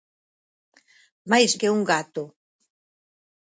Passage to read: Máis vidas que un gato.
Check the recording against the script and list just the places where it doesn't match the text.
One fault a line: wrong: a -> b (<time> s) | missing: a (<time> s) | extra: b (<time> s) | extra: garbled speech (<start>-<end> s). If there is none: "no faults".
missing: vidas (1.5 s)